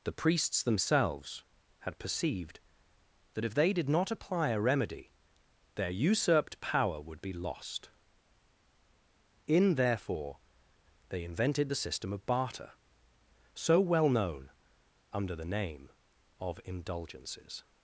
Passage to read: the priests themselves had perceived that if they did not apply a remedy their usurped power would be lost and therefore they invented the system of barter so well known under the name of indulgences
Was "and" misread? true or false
true